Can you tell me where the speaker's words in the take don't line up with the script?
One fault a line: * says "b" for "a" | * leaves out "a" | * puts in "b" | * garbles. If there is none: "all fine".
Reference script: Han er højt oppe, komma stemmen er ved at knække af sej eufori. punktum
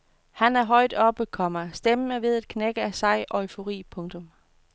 all fine